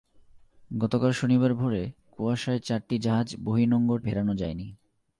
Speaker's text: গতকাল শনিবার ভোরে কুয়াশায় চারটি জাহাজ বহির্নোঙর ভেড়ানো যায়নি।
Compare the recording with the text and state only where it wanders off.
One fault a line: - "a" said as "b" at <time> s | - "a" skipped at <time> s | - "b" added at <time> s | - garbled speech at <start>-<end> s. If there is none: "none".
none